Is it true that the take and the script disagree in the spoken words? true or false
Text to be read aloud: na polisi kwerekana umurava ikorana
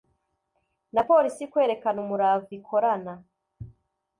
false